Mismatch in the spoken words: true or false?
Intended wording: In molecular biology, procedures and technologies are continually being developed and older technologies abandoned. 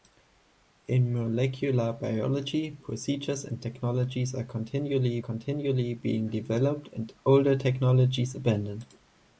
true